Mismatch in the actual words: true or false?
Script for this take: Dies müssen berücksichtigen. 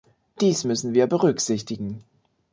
true